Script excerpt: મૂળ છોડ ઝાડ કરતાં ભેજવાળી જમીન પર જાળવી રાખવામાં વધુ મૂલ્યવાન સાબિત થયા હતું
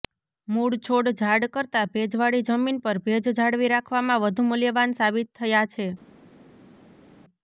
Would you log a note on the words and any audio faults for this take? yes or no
yes